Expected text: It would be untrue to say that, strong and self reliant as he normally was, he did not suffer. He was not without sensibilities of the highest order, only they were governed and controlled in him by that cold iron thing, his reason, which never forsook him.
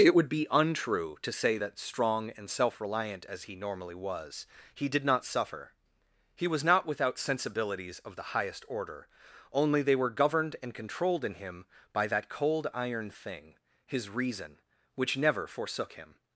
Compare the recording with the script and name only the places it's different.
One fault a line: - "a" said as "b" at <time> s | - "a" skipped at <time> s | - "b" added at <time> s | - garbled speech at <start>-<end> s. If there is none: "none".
none